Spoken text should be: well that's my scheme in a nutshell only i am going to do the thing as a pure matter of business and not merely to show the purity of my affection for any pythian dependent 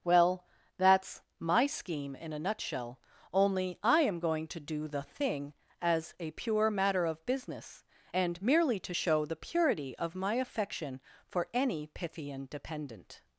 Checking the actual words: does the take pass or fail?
fail